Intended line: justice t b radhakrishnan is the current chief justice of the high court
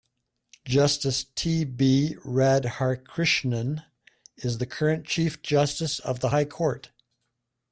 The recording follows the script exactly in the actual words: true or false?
true